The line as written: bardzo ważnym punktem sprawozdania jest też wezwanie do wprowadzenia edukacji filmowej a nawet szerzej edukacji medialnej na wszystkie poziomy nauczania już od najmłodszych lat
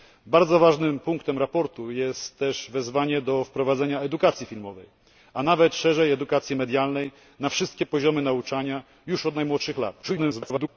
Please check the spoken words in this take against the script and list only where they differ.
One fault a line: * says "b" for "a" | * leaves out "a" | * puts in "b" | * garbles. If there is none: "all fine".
* garbles